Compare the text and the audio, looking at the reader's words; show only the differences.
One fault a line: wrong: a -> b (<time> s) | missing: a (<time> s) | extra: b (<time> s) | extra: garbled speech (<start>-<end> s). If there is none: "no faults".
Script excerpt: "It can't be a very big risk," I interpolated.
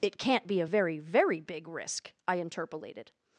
extra: very (1.0 s)